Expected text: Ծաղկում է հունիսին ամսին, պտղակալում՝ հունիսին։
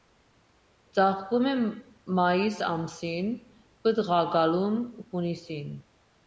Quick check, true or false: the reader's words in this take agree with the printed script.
false